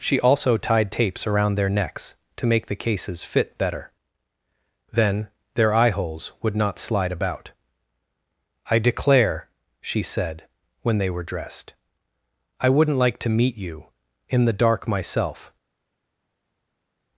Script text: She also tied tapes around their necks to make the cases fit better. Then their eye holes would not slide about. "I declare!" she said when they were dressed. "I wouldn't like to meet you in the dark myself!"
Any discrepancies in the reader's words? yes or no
no